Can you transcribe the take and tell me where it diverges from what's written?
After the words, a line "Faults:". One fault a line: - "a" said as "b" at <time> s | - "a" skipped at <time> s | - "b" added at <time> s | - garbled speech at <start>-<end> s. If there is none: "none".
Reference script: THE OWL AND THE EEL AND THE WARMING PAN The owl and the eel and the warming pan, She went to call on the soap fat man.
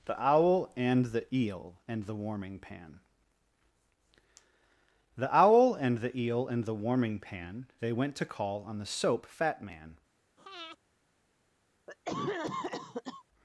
THE OWL AND THE EEL AND THE WARMING PAN The owl and the eel and the warming pan, They went to call on the soap fat man.
Faults:
- "She" said as "They" at 7.8 s